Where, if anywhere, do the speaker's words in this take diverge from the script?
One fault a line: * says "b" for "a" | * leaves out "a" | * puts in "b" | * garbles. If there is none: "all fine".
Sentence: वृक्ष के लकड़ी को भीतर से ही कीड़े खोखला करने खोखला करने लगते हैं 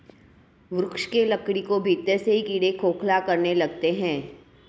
* leaves out "खोखला करने"